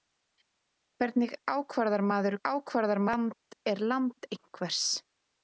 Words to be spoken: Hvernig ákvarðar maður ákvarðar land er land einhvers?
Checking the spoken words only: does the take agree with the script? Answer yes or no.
yes